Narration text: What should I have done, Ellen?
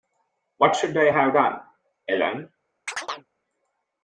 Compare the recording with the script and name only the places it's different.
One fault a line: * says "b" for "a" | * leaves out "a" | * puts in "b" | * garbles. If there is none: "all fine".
all fine